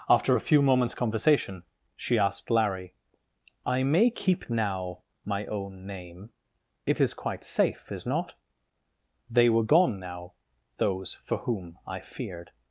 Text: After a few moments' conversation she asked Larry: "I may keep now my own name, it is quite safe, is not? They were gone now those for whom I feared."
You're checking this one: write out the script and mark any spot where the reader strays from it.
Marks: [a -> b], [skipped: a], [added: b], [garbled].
After a few moments' conversation she asked Larry: "I may keep now my own name, it is quite safe, is not? They were gone now those for whom I feared."